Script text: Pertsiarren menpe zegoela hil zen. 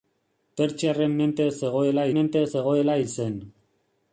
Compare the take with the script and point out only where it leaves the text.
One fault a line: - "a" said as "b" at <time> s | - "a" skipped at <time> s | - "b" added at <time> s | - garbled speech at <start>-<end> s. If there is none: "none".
- "menpe zegoela" added at 2.2 s